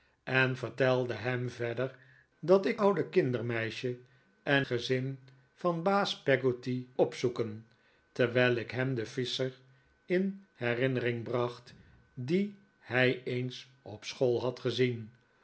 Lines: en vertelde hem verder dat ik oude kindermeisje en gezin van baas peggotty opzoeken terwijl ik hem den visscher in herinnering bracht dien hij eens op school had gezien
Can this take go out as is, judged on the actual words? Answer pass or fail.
pass